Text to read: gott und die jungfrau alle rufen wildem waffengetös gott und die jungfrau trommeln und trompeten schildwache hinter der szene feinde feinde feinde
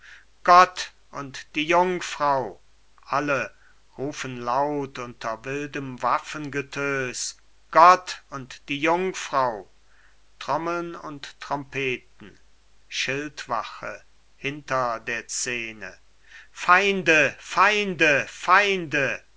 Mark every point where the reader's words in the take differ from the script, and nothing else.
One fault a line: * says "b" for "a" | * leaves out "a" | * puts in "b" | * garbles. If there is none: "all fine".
* puts in "laut unter"